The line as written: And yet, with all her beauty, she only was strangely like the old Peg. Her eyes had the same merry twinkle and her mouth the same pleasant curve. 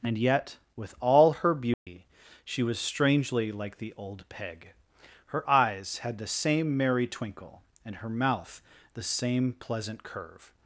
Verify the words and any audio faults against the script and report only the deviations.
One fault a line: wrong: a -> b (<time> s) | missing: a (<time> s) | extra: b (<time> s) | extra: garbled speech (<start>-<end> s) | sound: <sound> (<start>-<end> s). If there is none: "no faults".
sound: dropout (1.7-1.9 s)
missing: only (2.6 s)